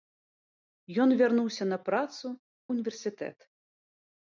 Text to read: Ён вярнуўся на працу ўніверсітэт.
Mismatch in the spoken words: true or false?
false